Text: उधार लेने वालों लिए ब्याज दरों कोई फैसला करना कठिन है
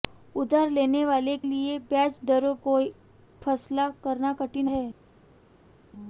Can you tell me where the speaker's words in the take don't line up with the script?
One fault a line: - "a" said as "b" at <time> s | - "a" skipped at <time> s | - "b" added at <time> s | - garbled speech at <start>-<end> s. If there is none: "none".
none